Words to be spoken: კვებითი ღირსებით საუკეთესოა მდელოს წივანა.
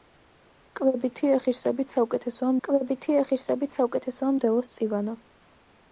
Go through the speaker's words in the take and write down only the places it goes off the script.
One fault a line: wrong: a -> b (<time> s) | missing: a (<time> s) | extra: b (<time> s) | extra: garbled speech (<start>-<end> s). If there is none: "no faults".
extra: კვებითი ღირსებით საუკეთესოა (2.7 s)